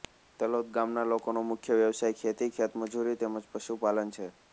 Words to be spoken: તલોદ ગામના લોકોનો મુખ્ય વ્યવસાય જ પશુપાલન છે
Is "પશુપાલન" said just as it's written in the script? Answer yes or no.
yes